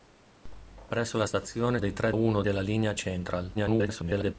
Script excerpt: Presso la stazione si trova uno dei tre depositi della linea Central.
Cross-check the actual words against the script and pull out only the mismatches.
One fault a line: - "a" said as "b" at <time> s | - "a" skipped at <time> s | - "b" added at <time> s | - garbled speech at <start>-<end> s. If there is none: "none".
- "si trova uno" skipped at 1.8 s
- "depositi" said as "uno" at 2.1 s
- garbled speech at 3.5-4.4 s